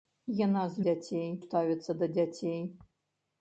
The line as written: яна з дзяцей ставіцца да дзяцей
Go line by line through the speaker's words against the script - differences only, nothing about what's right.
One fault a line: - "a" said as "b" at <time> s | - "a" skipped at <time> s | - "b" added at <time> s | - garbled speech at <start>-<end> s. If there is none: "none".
none